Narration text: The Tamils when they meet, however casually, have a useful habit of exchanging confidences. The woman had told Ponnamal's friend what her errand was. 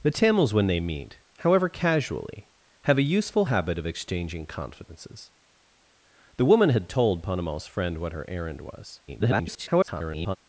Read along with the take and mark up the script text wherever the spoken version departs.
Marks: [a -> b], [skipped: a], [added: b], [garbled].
The Tamils when they meet, however casually, have a useful habit of exchanging confidences. The woman had told Ponnamal's friend what her errand was. [garbled]